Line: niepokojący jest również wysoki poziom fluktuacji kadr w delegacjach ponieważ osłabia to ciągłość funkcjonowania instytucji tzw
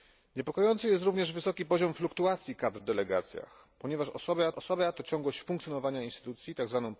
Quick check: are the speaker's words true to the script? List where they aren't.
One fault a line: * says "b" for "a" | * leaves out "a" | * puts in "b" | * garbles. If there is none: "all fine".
* puts in "osłabia"